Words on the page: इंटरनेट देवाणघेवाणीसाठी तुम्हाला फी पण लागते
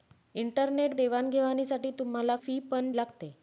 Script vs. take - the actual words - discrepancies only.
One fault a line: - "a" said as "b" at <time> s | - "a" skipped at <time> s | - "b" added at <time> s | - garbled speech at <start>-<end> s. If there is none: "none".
none